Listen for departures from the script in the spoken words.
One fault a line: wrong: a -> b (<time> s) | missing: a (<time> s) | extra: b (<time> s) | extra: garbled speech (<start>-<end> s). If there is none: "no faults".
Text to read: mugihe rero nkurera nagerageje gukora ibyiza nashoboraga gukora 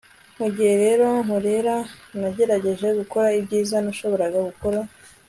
no faults